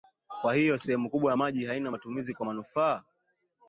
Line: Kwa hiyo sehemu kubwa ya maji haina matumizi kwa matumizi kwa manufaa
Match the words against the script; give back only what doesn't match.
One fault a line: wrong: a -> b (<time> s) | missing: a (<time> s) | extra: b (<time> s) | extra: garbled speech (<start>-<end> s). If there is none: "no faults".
missing: matumizi kwa (2.5 s)